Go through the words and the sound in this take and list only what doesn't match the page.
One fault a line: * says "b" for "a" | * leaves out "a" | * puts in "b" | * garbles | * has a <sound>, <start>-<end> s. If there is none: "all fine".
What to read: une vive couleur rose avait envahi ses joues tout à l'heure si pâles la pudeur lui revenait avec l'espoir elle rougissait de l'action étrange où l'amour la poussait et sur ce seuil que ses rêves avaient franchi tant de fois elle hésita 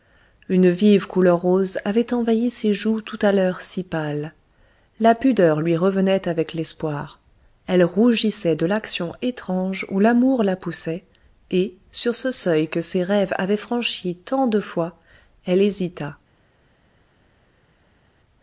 all fine